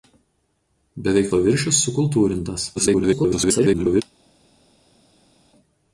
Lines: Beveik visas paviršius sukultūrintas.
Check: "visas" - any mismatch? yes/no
yes